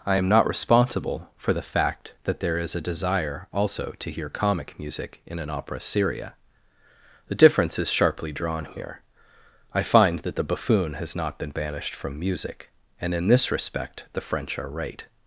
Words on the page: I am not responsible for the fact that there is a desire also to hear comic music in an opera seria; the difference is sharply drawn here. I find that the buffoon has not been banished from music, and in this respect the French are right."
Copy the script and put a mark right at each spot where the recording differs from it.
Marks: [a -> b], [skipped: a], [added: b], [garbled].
I am not responsible for the fact that there is a desire also to hear comic music in an opera seria; the difference is sharply drawn here. I find that the buffoon has not been banished from music, and in this respect the French are right."